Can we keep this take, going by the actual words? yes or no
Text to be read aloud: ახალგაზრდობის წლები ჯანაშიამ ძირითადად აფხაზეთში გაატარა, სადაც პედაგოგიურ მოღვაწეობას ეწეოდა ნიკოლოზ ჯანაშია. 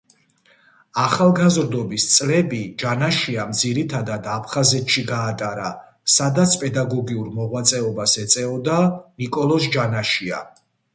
yes